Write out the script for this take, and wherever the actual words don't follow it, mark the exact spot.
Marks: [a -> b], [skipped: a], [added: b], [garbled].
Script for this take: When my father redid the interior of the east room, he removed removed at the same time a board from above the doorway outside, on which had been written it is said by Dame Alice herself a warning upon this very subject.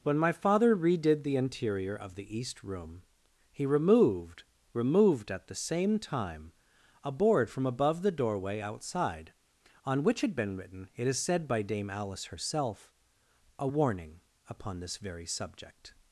When my father redid the interior of the east room, he removed removed at the same time a board from above the doorway outside, on which had been written it is said by Dame Alice herself a warning upon this very subject.